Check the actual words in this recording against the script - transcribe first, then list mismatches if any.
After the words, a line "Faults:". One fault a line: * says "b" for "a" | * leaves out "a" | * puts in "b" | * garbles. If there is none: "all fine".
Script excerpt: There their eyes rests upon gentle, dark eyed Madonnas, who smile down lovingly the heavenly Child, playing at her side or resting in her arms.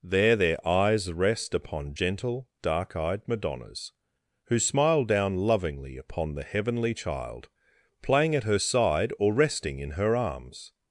There their eyes rest upon gentle, dark eyed Madonnas, who smile down lovingly upon the heavenly Child, playing at her side or resting in her arms.
Faults:
* says "rest" for "rests"
* puts in "upon"